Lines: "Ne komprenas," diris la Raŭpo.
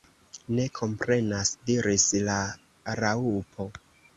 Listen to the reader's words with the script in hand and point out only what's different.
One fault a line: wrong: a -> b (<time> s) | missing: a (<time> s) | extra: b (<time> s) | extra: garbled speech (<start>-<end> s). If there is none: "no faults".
no faults